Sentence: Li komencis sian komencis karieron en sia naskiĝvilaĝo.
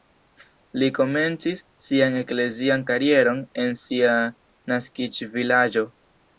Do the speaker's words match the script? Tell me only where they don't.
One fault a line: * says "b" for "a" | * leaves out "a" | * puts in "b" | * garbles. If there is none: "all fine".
* says "eklezian" for "komencis"